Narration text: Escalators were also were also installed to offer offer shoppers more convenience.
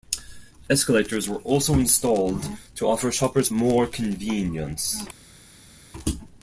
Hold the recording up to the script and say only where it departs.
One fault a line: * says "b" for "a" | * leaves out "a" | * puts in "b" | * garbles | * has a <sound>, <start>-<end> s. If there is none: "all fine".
* leaves out "were also"
* leaves out "offer"